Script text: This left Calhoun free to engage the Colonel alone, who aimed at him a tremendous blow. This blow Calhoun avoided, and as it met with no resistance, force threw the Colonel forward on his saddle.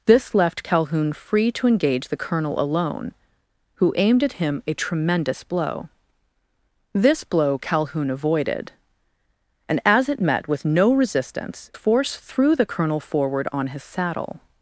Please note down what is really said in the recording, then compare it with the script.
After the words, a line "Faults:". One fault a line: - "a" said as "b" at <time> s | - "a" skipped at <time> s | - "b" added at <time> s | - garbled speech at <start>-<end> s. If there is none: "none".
This left Calhoun free to engage the Colonel alone, who aimed at him a tremendous blow. This blow Calhoun avoided, and as it met with no resistance, force threw the Colonel forward on his saddle.
Faults:
none